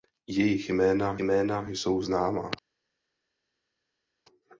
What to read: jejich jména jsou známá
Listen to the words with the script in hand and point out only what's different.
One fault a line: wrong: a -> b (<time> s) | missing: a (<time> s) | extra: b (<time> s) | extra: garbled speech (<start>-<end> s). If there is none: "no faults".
extra: jména (1.2 s)